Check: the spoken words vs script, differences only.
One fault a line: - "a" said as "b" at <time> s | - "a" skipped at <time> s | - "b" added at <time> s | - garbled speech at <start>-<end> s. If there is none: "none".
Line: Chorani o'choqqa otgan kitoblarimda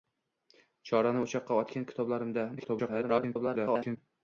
- garbled speech at 2.6-4.0 s